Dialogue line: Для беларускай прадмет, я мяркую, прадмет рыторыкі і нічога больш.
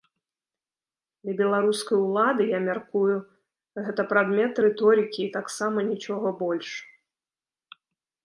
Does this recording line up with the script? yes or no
no